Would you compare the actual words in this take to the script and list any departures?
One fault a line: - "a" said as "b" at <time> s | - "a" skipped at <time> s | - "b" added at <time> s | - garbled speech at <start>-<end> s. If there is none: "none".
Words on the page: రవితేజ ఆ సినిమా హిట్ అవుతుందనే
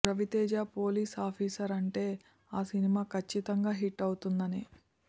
- "పోలీస్ ఆఫీసర్ అంటే" added at 0.8 s
- "కచ్చితంగా" added at 3.1 s